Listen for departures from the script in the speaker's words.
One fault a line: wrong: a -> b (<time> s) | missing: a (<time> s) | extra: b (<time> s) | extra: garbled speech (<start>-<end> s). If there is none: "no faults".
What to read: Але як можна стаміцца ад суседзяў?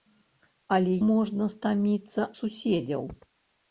missing: як (0.9 s)
missing: ад (2.3 s)